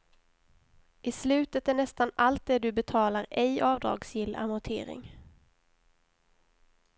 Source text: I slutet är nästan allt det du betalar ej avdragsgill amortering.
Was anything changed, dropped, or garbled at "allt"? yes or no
no